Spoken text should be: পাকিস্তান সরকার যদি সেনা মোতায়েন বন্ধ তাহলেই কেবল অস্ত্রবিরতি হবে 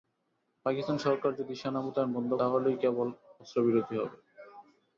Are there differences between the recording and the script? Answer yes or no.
no